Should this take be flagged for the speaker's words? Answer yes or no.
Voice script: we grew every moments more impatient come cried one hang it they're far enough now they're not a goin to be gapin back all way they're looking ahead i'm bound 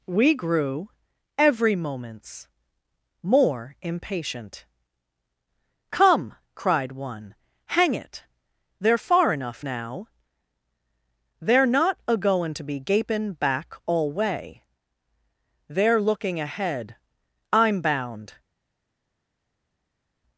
no